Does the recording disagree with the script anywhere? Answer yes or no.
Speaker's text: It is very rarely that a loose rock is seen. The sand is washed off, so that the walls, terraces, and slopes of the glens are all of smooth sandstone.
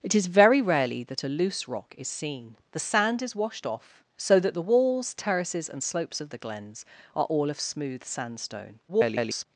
yes